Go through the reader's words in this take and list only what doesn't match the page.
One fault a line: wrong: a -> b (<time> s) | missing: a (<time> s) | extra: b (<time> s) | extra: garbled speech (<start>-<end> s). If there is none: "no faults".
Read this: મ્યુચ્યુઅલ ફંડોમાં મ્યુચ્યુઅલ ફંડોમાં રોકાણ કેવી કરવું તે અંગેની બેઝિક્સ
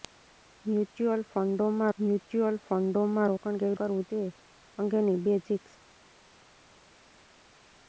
no faults